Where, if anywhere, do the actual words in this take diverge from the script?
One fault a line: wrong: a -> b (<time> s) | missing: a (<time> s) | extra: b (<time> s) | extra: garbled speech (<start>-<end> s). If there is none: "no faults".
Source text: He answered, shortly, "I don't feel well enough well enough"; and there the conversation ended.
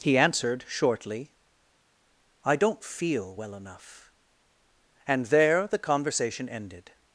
missing: well enough (4.1 s)